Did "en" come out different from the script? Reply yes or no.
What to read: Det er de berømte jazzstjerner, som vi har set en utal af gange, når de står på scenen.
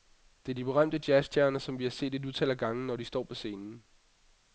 yes